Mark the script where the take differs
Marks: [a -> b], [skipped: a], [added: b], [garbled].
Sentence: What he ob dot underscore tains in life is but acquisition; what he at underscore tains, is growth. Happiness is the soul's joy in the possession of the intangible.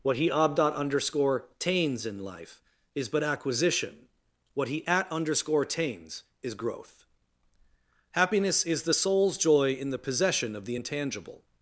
What he ob dot underscore tains in life is but acquisition; what he at underscore tains, is growth. Happiness is the soul's joy in the possession of the intangible.